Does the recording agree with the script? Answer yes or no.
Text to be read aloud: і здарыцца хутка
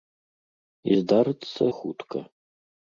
yes